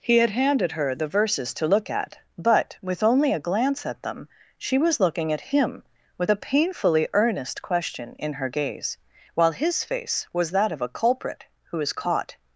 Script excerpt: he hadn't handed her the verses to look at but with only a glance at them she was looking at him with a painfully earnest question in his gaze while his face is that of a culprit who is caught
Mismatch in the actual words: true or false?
true